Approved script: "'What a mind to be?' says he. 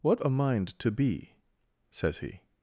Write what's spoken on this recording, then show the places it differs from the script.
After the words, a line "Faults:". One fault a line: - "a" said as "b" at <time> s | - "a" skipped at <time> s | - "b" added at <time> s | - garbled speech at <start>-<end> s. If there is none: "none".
"'What a mind to be?' says he.
Faults:
none